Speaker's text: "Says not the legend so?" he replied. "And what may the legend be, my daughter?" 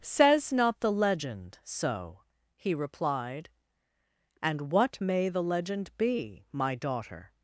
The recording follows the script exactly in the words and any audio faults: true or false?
true